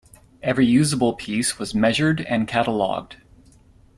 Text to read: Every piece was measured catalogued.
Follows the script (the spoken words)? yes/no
no